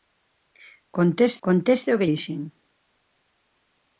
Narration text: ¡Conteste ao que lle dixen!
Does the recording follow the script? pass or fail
fail